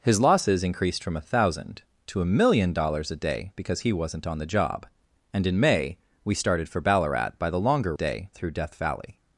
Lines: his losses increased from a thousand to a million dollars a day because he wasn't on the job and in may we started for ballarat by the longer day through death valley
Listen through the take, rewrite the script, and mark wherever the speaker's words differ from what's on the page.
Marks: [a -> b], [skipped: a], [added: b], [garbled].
his losses increased from a thousand to a million dollars a day because he wasn't on the job and in may we started for ballarat by the longer day through death valley